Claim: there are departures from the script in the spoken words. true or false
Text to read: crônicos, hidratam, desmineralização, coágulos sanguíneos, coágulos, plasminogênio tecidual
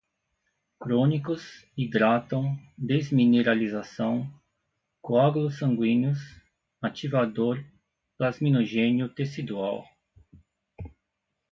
true